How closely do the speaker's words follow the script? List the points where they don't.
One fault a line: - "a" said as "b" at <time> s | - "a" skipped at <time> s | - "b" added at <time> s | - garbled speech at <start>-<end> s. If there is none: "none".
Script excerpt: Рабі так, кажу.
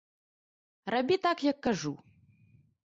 - "як" added at 1.4 s